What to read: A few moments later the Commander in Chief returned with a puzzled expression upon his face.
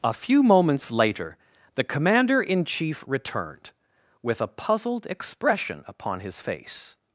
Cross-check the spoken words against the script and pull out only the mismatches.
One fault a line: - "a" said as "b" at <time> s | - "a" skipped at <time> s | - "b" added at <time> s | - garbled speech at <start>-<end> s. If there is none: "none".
none